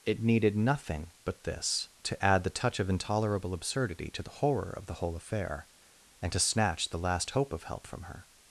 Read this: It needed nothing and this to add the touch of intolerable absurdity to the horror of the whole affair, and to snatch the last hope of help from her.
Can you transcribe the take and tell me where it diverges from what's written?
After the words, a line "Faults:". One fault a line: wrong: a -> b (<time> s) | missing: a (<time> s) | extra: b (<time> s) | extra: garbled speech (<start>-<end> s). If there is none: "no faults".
It needed nothing but this to add the touch of intolerable absurdity to the horror of the whole affair, and to snatch the last hope of help from her.
Faults:
wrong: and -> but (1.2 s)